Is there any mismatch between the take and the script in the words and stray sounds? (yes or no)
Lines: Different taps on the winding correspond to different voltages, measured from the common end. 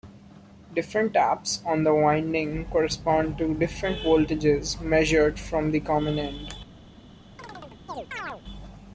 yes